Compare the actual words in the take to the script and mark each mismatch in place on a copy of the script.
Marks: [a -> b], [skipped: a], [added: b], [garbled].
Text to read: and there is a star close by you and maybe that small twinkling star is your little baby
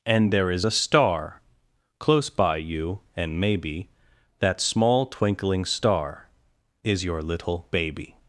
and there is a star close by you and maybe that small twinkling star is your little baby